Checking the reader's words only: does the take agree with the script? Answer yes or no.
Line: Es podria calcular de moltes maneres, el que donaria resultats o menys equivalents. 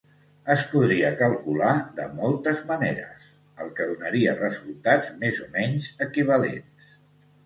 no